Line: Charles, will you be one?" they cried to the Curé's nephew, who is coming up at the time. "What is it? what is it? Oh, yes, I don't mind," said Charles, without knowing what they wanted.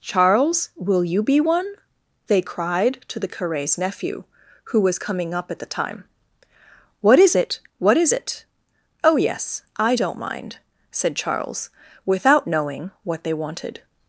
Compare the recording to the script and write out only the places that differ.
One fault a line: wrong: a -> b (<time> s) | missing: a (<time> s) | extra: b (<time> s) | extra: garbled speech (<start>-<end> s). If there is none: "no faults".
wrong: is -> was (4.8 s)